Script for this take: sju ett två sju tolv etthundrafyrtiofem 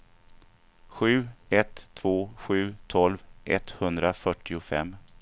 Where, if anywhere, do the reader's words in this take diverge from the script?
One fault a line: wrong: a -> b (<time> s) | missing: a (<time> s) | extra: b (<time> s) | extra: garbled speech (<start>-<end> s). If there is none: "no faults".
no faults